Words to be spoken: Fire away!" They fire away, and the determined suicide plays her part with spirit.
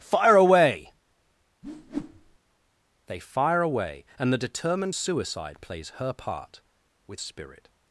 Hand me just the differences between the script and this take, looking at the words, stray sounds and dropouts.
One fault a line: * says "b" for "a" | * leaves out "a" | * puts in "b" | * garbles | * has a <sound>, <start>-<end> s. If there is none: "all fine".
* has a whoosh, 1.6-2.4 s